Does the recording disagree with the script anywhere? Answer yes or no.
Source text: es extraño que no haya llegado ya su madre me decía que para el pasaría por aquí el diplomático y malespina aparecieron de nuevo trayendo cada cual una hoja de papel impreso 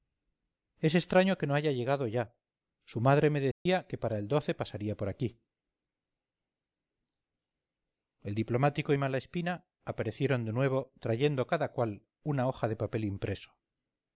no